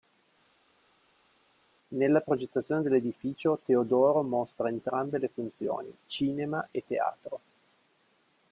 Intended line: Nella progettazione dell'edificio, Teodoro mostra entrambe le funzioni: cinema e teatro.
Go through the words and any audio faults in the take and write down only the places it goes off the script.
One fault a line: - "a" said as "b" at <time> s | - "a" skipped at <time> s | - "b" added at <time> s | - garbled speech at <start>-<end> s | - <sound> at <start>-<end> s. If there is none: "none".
none